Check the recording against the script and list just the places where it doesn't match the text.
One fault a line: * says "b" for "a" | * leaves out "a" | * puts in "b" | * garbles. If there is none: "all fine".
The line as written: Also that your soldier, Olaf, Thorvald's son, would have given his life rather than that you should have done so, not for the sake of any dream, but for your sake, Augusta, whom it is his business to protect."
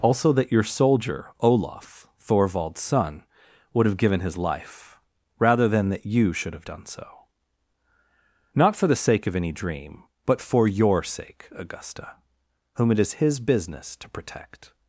all fine